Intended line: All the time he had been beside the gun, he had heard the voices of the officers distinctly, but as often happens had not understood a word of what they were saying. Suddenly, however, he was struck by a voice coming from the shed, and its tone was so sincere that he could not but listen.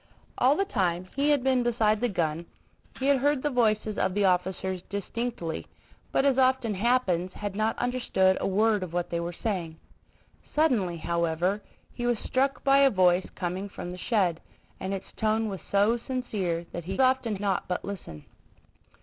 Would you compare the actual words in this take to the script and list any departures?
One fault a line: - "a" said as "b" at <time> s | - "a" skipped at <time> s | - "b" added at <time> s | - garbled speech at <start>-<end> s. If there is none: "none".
- "could" said as "often" at 17.0 s